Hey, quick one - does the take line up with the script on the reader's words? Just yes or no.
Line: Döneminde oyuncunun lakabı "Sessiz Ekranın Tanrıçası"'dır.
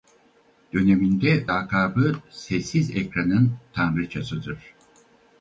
no